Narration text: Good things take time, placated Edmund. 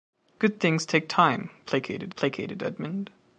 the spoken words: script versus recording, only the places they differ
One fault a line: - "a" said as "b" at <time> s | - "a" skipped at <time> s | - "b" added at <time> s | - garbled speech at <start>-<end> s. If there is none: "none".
- "placated" added at 2.2 s